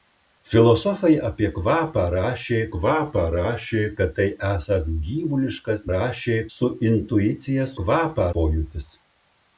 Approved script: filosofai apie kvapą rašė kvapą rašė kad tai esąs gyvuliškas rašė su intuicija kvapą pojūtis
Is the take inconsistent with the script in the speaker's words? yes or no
no